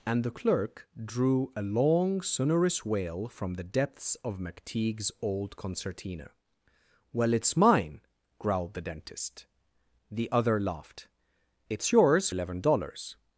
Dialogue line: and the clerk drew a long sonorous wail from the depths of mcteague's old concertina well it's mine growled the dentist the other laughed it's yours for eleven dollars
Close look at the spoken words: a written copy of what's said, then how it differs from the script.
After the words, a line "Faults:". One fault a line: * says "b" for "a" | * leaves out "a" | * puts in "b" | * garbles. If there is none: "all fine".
and the clerk drew a long sonorous wail from the depths of mcteague's old concertina well it's mine growled the dentist the other laughed it's yours eleven dollars
Faults:
* leaves out "for"